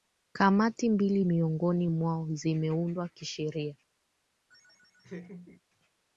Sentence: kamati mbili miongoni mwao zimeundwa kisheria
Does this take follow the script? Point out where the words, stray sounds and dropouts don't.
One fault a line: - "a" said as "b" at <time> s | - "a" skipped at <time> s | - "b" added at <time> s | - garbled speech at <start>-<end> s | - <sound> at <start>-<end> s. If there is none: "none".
- laugh at 4.5-5.6 s